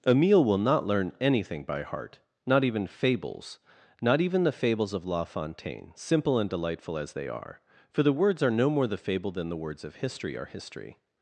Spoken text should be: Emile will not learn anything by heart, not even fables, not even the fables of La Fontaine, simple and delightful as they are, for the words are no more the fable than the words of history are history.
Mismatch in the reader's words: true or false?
false